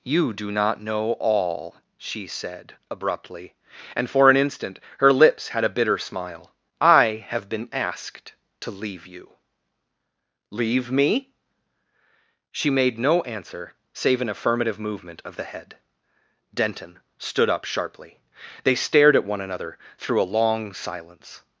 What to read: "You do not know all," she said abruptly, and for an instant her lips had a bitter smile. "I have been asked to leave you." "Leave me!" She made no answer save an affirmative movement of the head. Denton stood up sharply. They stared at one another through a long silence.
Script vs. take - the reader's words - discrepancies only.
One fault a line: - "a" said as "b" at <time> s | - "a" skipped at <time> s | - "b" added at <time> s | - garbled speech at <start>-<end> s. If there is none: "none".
none